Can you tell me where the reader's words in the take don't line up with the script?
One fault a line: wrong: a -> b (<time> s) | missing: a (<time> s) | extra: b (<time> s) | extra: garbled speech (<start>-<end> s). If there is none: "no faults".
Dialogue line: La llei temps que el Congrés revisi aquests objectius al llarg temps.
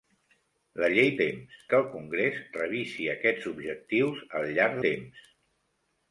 no faults